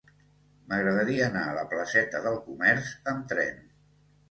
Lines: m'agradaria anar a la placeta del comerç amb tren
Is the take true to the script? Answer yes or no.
yes